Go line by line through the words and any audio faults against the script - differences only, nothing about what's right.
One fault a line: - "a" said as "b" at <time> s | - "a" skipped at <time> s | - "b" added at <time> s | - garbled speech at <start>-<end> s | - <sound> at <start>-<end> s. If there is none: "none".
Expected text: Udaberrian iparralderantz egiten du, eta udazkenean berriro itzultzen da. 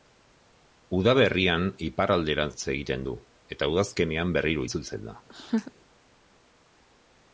- laugh at 5.3-5.7 s